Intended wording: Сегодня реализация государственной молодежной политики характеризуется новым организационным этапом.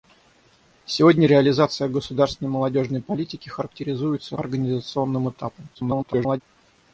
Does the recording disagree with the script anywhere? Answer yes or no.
yes